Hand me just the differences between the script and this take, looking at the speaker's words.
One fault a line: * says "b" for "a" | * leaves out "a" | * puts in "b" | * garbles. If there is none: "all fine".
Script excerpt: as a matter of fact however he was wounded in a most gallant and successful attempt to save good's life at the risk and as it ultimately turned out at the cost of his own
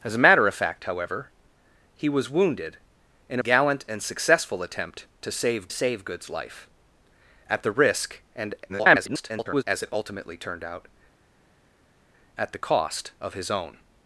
* leaves out "most"
* puts in "save"
* garbles